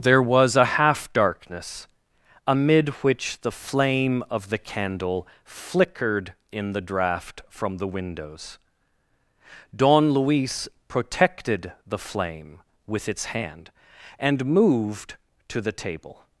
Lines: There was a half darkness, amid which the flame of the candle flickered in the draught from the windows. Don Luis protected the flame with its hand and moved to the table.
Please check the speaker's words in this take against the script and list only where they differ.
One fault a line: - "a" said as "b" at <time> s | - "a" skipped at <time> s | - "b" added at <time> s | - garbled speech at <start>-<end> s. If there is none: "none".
none